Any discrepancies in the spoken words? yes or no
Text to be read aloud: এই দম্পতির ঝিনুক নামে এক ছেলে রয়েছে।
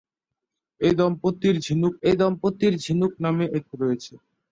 yes